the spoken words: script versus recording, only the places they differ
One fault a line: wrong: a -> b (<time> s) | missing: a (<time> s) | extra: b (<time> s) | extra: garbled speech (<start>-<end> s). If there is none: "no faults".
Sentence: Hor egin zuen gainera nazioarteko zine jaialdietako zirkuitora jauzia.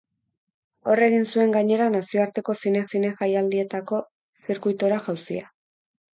extra: zine (2.9 s)